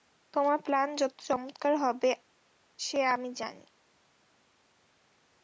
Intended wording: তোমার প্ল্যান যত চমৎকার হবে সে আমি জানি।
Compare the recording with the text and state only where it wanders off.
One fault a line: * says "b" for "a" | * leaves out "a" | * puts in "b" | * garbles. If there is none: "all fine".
all fine